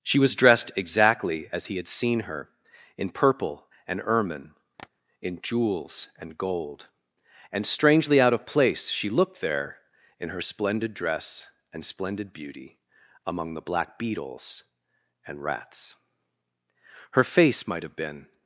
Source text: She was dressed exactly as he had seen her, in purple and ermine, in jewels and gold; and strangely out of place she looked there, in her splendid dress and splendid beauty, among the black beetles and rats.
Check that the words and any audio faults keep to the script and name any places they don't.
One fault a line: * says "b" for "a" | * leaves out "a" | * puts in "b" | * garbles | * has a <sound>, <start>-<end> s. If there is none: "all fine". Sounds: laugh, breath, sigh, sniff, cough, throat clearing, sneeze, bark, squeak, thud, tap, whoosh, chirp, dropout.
* has a tap, 4.8-4.9 s
* puts in "Her face might have been"